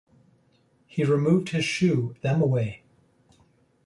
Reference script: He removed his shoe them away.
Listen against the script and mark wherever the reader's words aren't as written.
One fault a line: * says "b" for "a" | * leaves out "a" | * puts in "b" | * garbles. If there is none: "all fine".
all fine